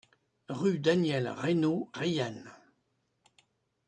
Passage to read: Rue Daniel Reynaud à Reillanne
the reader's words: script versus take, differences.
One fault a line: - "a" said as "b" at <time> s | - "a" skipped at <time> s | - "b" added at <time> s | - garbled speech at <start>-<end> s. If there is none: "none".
- "à" skipped at 1.9 s